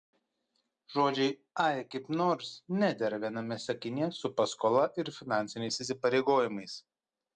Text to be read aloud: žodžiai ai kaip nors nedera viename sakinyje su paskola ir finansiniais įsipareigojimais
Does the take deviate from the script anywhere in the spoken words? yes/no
no